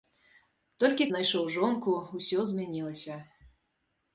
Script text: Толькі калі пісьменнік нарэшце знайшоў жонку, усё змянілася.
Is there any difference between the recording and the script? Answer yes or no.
yes